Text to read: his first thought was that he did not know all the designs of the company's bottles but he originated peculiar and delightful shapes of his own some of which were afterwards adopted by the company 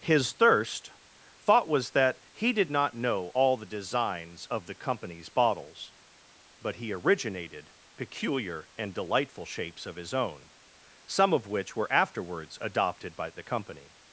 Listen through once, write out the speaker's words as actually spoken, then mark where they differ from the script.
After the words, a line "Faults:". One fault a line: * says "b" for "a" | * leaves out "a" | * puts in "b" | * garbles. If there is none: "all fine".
his thirst thought was that he did not know all the designs of the company's bottles but he originated peculiar and delightful shapes of his own some of which were afterwards adopted by the company
Faults:
* says "thirst" for "first"